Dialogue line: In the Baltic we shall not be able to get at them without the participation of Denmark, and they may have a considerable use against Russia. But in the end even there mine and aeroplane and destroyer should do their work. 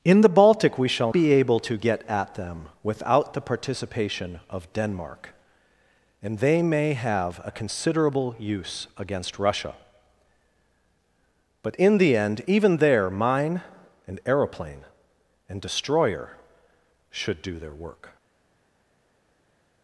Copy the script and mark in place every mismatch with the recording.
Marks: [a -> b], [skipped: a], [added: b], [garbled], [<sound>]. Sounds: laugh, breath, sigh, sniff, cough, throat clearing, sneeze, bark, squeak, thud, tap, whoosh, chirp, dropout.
In the Baltic we shall [skipped: not] be able to get at them without the participation of Denmark, and they may have a considerable use against Russia. But in the end even there mine and aeroplane and destroyer should do their work.